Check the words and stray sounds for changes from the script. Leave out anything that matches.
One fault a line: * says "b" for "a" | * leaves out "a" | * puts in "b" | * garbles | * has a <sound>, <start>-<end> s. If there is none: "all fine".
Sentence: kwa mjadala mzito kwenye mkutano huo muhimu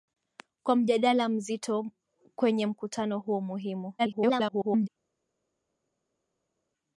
* garbles